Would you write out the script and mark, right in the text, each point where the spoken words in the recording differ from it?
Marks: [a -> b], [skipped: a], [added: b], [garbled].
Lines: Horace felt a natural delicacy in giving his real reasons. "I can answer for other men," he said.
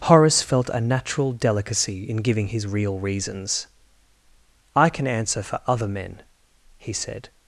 Horace felt a natural delicacy in giving his real reasons. "I can answer for other men," he said.